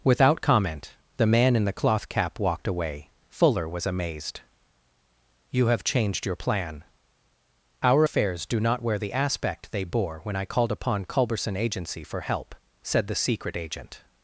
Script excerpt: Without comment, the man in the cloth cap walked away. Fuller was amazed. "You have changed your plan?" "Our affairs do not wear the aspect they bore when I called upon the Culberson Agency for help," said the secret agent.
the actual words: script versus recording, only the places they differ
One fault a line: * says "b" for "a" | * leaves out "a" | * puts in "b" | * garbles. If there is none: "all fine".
* leaves out "the"